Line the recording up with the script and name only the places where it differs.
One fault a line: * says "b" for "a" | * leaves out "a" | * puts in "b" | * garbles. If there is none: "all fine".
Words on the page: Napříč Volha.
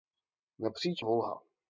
all fine